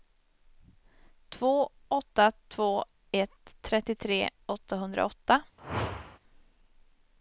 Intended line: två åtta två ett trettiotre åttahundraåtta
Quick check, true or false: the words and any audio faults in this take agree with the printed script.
false